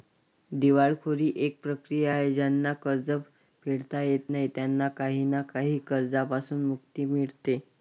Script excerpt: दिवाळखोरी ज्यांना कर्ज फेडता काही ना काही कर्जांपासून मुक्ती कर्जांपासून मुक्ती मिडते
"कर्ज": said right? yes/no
yes